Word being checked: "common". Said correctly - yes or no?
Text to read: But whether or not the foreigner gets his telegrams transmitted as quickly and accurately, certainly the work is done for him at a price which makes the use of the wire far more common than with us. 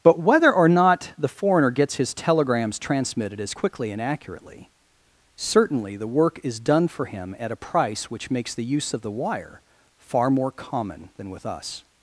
yes